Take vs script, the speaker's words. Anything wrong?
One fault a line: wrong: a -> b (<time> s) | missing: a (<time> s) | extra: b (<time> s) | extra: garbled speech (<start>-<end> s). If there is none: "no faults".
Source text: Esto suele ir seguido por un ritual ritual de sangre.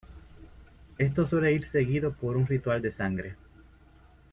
missing: ritual (2.8 s)